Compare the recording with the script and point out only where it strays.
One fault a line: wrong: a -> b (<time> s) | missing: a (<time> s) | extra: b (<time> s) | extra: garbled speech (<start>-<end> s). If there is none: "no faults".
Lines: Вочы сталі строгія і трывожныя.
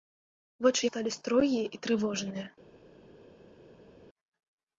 no faults